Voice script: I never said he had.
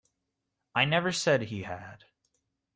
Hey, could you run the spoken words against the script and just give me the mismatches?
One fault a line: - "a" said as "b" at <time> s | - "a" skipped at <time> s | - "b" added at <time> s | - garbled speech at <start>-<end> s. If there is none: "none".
none